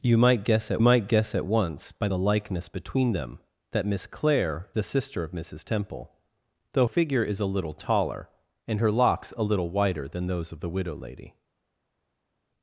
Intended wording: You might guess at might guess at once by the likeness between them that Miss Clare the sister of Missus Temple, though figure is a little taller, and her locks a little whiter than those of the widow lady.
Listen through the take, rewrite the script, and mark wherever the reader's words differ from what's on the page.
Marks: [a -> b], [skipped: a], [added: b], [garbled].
You might guess at might guess at once by the likeness between them that Miss Clare the sister of Missus Temple, though figure is a little taller, and her locks a little whiter than those of the widow lady.